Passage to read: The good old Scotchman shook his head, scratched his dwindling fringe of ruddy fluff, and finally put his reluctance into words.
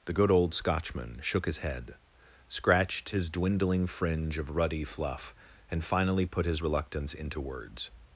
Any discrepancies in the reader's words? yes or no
no